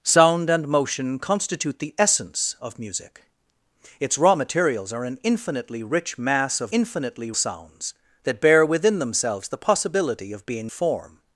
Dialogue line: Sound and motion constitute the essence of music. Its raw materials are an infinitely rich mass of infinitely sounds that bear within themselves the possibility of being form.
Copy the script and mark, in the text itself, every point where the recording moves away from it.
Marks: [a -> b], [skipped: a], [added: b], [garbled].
Sound and motion constitute the essence of music. Its raw materials are an infinitely rich mass of infinitely sounds that bear within themselves the possibility of being form.